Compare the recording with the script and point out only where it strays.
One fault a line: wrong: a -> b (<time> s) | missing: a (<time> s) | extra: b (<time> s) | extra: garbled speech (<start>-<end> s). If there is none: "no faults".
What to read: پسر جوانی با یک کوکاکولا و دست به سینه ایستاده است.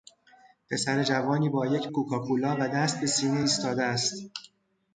no faults